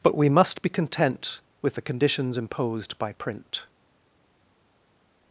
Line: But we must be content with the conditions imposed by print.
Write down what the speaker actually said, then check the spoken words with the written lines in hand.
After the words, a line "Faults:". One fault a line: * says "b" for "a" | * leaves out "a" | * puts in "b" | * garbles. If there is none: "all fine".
But we must be content with the conditions imposed by print.
Faults:
all fine